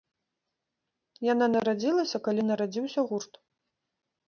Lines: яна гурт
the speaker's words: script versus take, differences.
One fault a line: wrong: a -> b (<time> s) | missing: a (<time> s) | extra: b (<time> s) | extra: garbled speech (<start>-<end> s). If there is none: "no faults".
extra: нарадзілася калі нарадзіўся (1.6 s)